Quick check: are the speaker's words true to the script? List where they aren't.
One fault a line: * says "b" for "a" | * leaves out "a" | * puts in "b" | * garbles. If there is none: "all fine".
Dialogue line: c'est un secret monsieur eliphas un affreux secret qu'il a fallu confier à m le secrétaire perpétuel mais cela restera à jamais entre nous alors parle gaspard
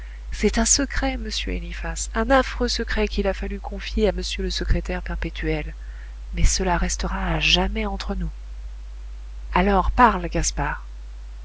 all fine